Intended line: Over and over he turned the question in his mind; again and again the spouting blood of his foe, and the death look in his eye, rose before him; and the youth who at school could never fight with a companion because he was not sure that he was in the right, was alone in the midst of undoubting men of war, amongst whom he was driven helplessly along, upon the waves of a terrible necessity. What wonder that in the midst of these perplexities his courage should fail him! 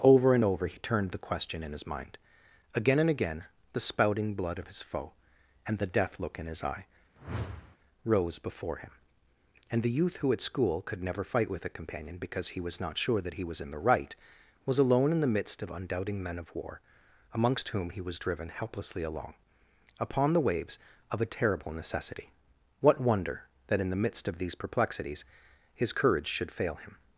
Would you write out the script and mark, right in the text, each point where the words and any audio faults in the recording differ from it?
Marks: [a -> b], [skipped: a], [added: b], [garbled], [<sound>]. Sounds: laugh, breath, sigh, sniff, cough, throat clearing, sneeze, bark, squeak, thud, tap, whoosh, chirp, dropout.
Over and over he turned the question in his mind; again and again the spouting blood of his foe, and the death look in his eye, [whoosh] rose before him; and the youth who at school could never fight with a companion because he was not sure that he was in the right, was alone in the midst of undoubting men of war, amongst whom he was driven helplessly along, upon the waves of a terrible necessity. What wonder that in the midst of these perplexities his courage should fail him!